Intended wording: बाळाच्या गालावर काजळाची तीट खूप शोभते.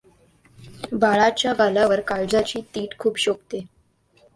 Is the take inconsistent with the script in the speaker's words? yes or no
no